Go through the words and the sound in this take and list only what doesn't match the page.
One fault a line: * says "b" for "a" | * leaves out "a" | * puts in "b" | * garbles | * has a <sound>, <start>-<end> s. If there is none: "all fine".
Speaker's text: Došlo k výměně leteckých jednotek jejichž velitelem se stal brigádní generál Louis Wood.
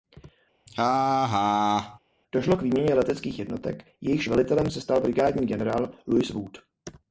* has a laugh, 0.7-2.0 s